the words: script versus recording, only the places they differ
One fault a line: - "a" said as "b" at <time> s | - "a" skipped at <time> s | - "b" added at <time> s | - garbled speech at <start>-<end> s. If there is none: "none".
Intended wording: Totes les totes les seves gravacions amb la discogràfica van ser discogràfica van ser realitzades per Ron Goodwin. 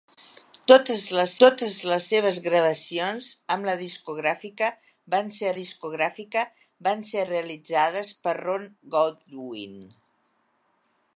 none